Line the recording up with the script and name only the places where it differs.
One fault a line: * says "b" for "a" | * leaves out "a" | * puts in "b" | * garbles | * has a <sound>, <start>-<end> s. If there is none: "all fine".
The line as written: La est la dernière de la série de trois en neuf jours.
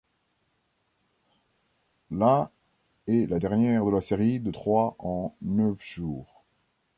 all fine